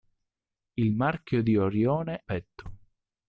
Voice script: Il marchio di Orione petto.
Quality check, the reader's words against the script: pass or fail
pass